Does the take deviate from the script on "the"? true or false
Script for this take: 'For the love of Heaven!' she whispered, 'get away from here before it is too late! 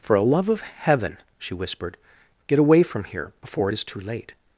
true